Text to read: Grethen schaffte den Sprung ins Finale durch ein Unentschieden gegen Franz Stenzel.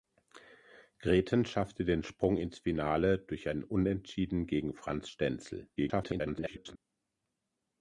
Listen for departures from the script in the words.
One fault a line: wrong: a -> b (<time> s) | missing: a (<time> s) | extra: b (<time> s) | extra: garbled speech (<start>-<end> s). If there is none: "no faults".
extra: garbled speech (5.8-6.8 s)